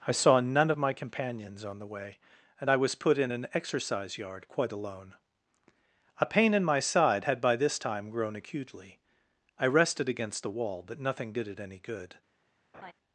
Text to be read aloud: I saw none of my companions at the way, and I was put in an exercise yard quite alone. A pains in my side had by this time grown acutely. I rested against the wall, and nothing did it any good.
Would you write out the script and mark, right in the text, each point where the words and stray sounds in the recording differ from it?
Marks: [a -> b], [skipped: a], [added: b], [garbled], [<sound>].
I saw none of my companions [at -> on] the way, and I was put in an exercise yard quite alone. A [pains -> pain] in my side had by this time grown acutely. I rested against the wall, [and -> but] nothing did it any good. [laugh]